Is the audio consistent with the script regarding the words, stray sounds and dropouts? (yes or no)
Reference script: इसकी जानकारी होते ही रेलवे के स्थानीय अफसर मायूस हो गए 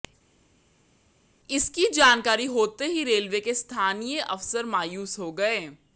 yes